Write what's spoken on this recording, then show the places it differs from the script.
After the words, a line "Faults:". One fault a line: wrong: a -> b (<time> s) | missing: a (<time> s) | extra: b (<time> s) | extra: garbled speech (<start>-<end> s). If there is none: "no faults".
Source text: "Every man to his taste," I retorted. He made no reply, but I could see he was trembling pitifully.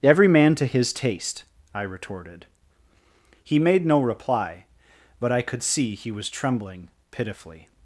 "Every man to his taste," I retorted. He made no reply, but I could see he was trembling pitifully.
Faults:
no faults